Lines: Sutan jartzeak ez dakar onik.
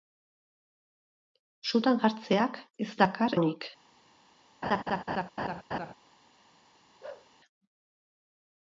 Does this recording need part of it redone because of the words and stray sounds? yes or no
yes